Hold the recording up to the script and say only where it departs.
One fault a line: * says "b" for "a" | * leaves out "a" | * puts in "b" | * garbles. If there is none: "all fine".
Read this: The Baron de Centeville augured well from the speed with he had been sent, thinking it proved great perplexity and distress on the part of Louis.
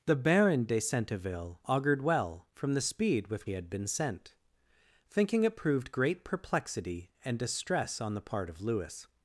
all fine